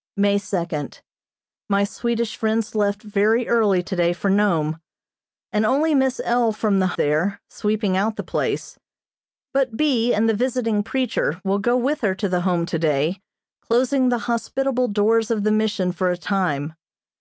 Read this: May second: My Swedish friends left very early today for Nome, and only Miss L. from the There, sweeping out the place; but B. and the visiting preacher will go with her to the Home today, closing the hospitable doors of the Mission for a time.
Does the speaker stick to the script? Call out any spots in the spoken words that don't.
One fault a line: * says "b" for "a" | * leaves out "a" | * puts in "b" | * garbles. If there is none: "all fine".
all fine